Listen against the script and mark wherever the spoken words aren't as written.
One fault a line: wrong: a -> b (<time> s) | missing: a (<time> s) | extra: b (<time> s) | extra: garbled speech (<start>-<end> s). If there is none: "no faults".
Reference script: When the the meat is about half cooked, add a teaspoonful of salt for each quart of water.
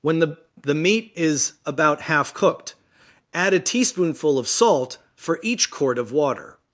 no faults